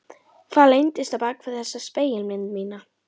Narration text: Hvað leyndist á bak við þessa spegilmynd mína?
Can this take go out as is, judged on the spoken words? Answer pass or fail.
pass